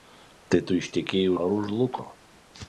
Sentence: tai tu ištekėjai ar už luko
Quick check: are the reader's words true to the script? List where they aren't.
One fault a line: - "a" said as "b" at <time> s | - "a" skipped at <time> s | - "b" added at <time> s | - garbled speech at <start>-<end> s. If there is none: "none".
none